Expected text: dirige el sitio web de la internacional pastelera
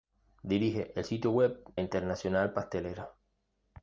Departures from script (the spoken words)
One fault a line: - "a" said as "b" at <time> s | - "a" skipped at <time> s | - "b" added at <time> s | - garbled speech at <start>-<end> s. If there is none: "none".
- "de la" skipped at 1.6 s